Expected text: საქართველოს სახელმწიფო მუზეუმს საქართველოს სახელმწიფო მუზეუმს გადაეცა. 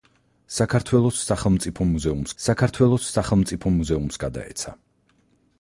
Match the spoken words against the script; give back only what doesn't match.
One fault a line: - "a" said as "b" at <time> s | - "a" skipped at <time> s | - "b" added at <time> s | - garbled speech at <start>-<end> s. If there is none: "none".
none